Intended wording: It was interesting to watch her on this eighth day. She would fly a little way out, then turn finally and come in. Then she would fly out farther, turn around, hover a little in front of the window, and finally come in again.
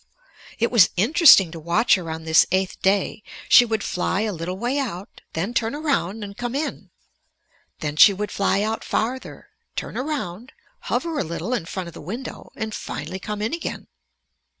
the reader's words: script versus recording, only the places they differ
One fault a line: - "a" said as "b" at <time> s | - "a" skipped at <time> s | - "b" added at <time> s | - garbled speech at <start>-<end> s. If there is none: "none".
- "finally" said as "around" at 5.8 s